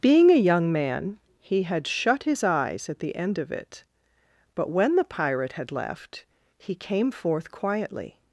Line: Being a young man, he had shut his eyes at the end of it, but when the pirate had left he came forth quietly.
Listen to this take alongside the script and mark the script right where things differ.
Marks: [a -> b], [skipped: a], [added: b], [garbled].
Being a young man, he had shut his eyes at the end of it, but when the pirate had left he came forth quietly.